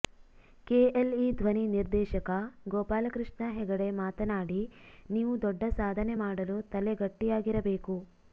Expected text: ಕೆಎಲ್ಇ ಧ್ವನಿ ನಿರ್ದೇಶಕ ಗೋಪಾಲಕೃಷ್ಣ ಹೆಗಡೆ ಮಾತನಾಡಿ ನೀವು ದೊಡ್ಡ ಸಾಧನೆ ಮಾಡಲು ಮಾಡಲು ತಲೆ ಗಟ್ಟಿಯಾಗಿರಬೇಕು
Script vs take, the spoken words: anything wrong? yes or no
yes